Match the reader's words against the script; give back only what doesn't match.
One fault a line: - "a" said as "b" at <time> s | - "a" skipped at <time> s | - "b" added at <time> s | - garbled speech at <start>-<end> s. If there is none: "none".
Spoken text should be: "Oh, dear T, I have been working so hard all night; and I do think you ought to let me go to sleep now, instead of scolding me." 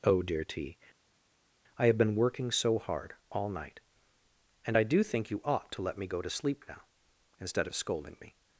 none